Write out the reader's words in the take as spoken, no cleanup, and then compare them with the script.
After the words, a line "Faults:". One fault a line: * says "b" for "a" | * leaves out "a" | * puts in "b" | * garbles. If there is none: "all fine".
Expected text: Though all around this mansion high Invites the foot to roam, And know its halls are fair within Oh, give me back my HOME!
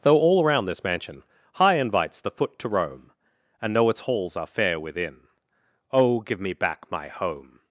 Though all around this mansion high Invites the foot to roam, And know its halls are fair within Oh, give me back my HOME!
Faults:
all fine